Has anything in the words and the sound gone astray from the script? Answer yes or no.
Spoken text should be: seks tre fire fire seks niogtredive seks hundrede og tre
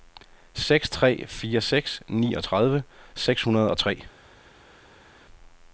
yes